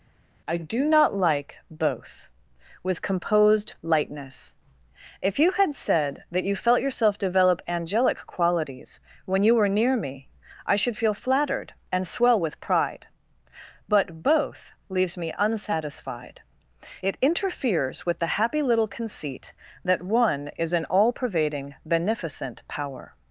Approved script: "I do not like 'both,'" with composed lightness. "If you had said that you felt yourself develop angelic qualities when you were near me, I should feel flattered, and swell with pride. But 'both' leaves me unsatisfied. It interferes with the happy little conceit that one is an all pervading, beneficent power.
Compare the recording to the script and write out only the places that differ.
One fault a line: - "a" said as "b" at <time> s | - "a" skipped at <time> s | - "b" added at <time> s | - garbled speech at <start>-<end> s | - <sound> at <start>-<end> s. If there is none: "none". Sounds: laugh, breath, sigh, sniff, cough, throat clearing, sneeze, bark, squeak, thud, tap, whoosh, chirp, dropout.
none